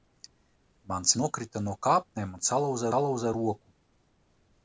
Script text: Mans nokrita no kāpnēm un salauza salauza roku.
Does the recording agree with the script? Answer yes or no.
yes